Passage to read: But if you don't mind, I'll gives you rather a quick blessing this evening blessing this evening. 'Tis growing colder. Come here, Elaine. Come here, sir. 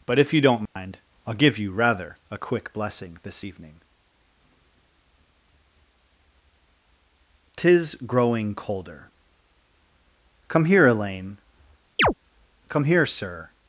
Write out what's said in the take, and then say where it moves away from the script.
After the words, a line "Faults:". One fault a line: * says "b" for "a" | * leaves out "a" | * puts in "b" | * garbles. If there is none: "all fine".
But if you don't mind, I'll give you rather a quick blessing this evening. 'Tis growing colder. Come here, Elaine. Come here, sir.
Faults:
* says "give" for "gives"
* leaves out "blessing this evening"